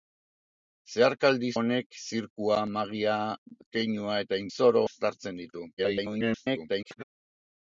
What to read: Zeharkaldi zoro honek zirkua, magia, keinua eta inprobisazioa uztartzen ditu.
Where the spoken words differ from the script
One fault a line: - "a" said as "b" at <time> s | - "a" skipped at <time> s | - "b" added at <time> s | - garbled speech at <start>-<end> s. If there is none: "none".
- "zoro" skipped at 1.5 s
- "inprobisazioa" said as "zoro" at 4.6 s
- garbled speech at 5.8-7.0 s